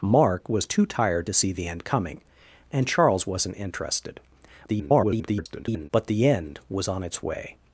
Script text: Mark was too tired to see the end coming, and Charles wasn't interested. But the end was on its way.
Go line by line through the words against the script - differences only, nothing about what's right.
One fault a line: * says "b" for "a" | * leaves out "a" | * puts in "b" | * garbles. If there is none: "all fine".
* garbles